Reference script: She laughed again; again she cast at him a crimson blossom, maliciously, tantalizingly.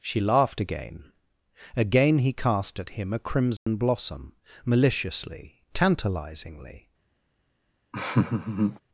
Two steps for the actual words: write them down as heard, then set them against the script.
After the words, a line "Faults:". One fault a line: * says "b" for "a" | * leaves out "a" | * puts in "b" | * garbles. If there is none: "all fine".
She laughed again; again he cast at him a crimson blossom, maliciously, tantalizingly.
Faults:
* says "he" for "she"